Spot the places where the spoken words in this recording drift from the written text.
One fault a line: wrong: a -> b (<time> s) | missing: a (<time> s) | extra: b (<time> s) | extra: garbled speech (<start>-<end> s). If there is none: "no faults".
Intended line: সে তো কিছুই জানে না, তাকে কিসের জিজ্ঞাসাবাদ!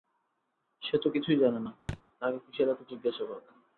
extra: এত (2.7 s)